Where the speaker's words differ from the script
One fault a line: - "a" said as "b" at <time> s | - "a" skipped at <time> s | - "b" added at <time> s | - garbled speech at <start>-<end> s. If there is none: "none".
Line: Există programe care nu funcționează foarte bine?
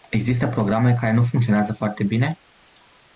none